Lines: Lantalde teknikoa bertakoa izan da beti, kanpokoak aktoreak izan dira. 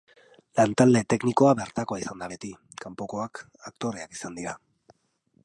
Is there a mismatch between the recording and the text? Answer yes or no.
no